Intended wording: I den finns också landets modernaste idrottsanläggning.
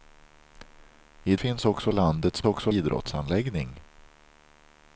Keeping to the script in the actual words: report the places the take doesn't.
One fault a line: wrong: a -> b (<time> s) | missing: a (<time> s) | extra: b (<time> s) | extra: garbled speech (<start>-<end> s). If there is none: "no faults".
missing: den (1.4 s)
wrong: modernaste -> också (2.4 s)